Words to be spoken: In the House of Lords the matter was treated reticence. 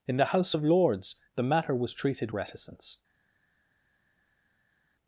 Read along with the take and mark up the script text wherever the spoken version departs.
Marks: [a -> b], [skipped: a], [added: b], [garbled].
In the House of Lords the matter was treated reticence.